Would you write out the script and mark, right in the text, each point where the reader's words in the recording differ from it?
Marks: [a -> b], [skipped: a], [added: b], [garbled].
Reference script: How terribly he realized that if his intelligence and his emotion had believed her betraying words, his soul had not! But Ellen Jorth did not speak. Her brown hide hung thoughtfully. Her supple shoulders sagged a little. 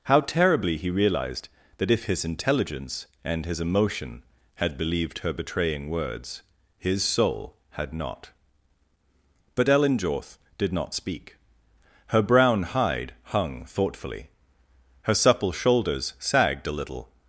How terribly he realized that if his intelligence and his emotion had believed her betraying words, his soul had not! But Ellen Jorth did not speak. Her brown hide hung thoughtfully. Her supple shoulders sagged a little.